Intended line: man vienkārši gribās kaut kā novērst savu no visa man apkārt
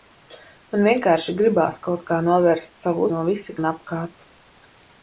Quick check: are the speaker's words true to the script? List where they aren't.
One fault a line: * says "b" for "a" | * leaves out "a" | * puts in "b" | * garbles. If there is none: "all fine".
all fine